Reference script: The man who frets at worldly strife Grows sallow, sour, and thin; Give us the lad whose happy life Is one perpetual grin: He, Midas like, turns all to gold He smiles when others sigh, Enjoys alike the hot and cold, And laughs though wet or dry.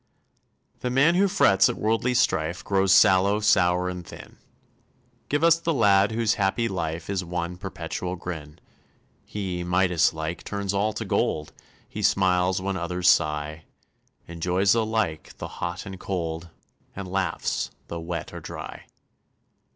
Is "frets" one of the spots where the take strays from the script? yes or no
no